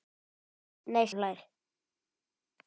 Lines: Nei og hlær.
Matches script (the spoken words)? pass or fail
pass